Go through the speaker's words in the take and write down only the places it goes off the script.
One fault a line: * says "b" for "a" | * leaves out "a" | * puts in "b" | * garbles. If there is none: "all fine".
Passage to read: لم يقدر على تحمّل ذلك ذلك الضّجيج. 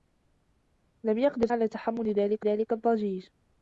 all fine